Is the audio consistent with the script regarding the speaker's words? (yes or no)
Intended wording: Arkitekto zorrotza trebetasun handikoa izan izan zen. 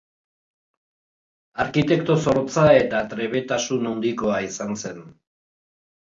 no